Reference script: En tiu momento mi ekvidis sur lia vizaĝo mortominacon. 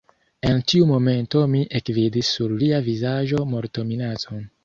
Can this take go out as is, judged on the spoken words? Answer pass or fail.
pass